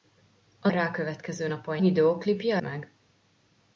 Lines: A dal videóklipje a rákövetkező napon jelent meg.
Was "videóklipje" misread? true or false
true